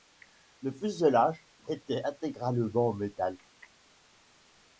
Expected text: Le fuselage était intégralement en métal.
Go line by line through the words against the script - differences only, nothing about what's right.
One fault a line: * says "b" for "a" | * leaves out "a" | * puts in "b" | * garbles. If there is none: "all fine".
all fine